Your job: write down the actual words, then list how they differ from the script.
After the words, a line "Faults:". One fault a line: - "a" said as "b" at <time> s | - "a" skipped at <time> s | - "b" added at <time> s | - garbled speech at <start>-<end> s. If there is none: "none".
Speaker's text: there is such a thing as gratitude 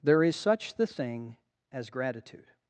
there is such the thing as gratitude
Faults:
- "a" said as "the" at 0.7 s